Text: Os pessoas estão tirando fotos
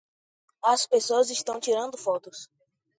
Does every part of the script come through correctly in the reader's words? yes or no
no